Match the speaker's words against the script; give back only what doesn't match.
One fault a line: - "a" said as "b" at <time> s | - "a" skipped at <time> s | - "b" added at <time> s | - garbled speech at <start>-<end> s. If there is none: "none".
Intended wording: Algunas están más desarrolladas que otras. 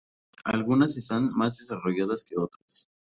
none